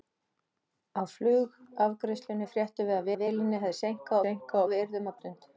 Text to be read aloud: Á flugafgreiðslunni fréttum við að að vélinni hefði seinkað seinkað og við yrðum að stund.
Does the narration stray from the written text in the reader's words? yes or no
no